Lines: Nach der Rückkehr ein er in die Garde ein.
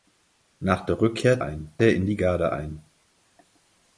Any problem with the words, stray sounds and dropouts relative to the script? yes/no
no